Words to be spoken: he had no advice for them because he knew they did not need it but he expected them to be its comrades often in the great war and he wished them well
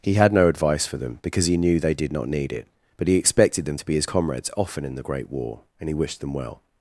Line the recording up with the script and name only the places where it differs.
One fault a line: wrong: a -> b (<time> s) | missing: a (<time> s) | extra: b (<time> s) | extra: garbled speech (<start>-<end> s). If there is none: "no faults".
wrong: its -> his (4.0 s)